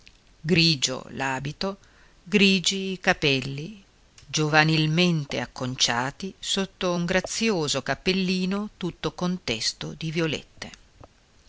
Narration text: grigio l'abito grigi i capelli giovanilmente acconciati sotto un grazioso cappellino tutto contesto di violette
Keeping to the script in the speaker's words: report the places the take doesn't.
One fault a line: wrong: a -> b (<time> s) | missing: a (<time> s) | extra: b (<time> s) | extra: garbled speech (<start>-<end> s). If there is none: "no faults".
no faults